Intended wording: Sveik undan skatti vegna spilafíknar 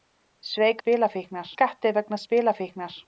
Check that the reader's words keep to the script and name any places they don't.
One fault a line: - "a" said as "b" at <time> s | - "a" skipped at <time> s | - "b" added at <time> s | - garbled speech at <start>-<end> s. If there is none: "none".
- "undan" said as "spilafíknar" at 0.8 s